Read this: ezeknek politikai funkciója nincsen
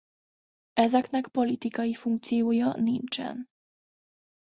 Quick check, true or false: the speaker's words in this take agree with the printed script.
true